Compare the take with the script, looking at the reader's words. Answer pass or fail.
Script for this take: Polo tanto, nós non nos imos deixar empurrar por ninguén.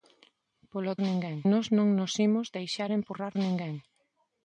fail